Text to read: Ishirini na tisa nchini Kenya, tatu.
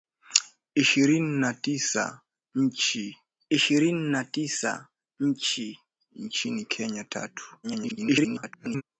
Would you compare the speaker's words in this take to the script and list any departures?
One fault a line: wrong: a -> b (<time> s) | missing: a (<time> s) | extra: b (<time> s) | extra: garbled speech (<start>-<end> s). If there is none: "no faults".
extra: ishirini na tisa (3.5 s)
extra: garbled speech (7.6-8.8 s)